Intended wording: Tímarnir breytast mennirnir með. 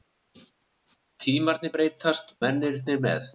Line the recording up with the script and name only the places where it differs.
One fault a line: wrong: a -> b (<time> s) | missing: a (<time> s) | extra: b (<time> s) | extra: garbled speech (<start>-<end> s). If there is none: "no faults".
no faults